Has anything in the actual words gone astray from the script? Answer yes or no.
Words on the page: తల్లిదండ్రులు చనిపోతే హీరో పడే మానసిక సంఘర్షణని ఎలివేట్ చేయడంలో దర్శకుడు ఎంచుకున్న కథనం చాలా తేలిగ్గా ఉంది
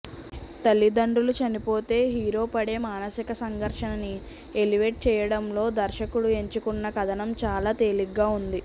no